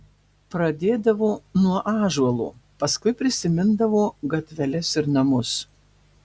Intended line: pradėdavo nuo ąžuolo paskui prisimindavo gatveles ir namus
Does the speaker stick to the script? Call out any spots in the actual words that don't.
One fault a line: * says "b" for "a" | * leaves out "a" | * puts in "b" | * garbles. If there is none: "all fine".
all fine